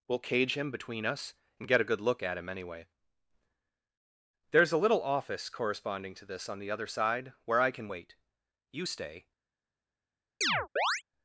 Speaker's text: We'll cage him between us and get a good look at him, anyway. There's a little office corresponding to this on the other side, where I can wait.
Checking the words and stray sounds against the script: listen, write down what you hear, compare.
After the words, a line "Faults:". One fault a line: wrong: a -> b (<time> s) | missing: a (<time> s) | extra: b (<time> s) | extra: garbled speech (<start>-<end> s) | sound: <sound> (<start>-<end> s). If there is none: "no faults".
We'll cage him between us and get a good look at him, anyway. There's a little office corresponding to this on the other side, where I can wait. You stay
Faults:
extra: You stay (8.7 s)
sound: chirp (10.4-11.0 s)